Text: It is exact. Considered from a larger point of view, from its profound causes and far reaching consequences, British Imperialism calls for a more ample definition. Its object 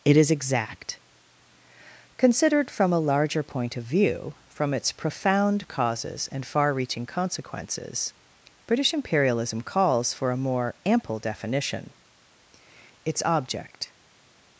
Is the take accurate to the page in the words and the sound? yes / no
yes